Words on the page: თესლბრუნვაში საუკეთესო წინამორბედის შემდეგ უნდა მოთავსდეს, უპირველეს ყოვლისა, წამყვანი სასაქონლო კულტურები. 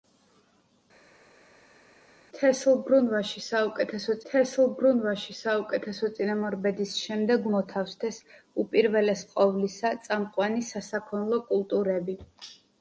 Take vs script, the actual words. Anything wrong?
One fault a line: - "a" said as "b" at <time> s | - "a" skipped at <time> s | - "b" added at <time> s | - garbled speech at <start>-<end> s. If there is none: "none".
- "თესლბრუნვაში საუკეთესო" added at 4.3 s
- "უნდა" skipped at 7.5 s